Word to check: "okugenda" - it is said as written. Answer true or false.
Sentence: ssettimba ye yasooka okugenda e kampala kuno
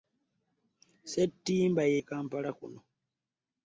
false